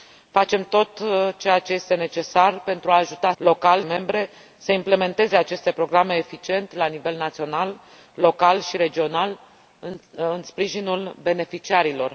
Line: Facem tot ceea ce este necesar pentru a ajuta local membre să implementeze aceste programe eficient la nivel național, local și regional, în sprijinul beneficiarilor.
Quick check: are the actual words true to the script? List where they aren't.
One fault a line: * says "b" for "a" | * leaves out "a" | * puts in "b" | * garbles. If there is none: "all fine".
all fine